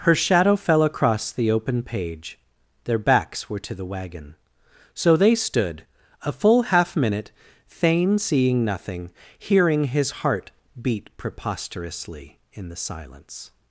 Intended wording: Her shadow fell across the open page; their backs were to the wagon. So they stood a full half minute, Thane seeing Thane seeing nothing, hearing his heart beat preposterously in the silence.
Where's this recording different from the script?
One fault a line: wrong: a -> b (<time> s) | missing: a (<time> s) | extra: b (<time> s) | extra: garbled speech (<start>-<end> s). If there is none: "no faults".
missing: Thane seeing (8.7 s)